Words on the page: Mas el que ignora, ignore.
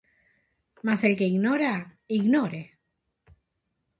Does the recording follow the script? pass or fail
pass